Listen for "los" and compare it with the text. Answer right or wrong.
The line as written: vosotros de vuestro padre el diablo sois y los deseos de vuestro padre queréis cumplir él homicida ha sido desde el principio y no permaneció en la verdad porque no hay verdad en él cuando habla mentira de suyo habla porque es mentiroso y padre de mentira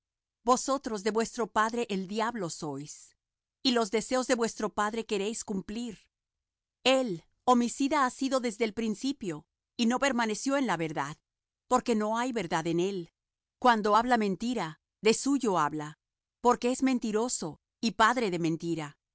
right